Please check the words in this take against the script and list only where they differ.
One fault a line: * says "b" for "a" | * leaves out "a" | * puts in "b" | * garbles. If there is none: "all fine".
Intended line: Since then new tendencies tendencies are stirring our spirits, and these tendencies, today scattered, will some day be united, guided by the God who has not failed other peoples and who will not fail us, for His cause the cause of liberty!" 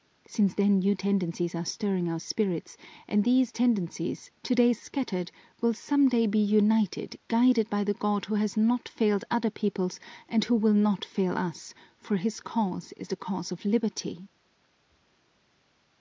* leaves out "tendencies"
* puts in "is"